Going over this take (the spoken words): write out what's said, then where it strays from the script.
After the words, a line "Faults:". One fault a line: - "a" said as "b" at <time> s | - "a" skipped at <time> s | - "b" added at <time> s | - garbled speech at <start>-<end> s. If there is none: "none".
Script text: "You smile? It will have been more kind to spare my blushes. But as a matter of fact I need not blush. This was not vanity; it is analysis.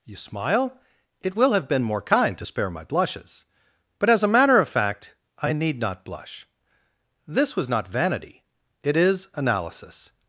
"You smile? It will have been more kind to spare my blushes. But as a matter of fact I need not blush. This was not vanity; it is analysis.
Faults:
none